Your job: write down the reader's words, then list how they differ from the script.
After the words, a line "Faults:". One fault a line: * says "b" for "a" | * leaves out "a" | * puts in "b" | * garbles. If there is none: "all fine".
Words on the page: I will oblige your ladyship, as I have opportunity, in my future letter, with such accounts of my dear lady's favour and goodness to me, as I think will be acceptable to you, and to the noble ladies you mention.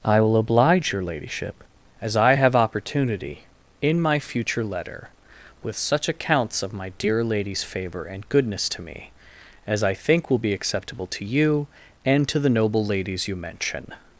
I will oblige your ladyship, as I have opportunity, in my future letter, with such accounts of my dear lady's favour and goodness to me, as I think will be acceptable to you, and to the noble ladies you mention.
Faults:
all fine